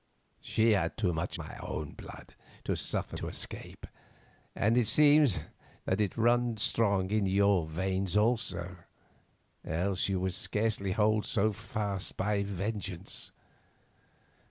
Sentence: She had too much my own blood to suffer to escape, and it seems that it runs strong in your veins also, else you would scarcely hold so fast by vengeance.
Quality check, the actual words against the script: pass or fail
pass